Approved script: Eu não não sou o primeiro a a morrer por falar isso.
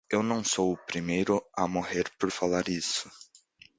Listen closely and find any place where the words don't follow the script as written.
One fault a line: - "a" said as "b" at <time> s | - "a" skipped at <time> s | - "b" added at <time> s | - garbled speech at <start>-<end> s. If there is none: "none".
- "não" skipped at 0.4 s
- "a" skipped at 1.7 s